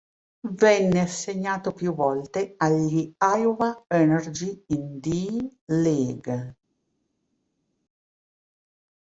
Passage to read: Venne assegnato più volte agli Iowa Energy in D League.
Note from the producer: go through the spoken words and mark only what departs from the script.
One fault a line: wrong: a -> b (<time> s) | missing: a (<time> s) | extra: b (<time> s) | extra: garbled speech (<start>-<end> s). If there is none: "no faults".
no faults